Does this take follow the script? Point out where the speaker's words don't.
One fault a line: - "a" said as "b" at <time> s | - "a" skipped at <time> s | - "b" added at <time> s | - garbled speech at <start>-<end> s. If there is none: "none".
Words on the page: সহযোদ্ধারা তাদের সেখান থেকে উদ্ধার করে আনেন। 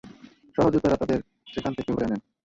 - "উদ্ধার" skipped at 1.9 s